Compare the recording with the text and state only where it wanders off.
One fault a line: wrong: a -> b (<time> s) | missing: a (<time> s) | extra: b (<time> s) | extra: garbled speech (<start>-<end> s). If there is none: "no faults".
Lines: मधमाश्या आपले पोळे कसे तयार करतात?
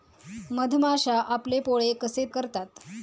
missing: तयार (2.2 s)